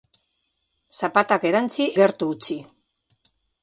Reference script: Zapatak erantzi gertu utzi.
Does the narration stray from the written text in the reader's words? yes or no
no